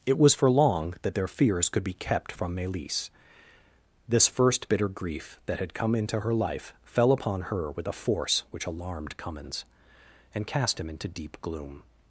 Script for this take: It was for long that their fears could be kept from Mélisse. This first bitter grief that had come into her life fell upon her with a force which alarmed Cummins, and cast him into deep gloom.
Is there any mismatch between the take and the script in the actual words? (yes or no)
no